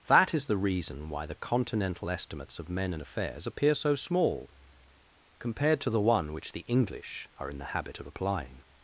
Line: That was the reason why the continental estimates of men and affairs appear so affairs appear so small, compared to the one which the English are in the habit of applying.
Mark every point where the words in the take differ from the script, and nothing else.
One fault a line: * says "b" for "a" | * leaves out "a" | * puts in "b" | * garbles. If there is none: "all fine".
* says "is" for "was"
* leaves out "affairs appear so"